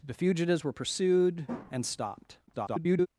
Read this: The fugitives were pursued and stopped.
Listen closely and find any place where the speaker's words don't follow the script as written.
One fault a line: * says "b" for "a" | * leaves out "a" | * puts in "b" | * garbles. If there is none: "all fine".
* garbles